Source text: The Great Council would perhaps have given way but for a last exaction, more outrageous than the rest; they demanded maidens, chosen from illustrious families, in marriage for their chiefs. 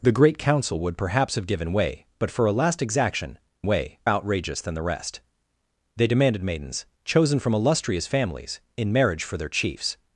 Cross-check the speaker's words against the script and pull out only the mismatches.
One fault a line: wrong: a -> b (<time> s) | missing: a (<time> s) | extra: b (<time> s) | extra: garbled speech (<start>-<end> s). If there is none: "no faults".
wrong: more -> way (3.7 s)